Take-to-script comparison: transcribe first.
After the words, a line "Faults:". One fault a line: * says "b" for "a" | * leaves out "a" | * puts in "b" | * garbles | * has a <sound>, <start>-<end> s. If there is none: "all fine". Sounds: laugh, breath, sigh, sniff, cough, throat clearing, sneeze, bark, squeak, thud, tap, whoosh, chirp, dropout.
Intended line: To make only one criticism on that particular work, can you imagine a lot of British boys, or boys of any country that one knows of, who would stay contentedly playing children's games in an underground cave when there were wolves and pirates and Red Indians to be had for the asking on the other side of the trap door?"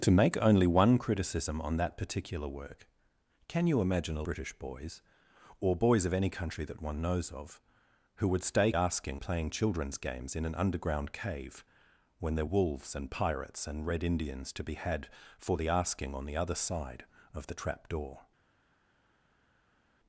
To make only one criticism on that particular work, can you imagine a British boys, or boys of any country that one knows of, who would stay asking playing children's games in an underground cave when there wolves and pirates and Red Indians to be had for the asking on the other side of the trap door?"
Faults:
* leaves out "lot of"
* says "asking" for "contentedly"
* leaves out "were"